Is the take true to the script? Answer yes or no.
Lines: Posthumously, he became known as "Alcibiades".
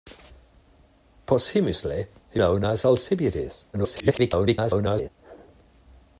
no